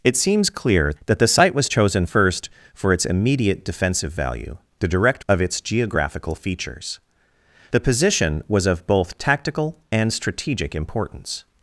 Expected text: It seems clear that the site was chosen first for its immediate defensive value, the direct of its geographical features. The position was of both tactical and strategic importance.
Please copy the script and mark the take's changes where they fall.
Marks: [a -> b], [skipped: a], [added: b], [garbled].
It seems clear that the site was chosen first for its immediate defensive value, the direct of its geographical features. The position was of both tactical and strategic importance.